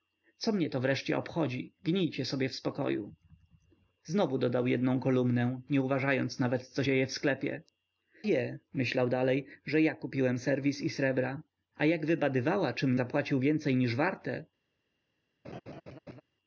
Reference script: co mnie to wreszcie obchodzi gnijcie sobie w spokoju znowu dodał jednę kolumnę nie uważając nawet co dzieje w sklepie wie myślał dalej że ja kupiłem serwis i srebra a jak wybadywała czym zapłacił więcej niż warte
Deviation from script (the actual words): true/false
false